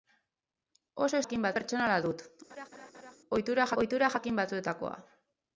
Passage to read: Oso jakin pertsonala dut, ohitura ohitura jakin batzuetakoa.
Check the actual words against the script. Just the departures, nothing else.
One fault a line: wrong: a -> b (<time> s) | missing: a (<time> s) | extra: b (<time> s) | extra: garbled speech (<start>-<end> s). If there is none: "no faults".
no faults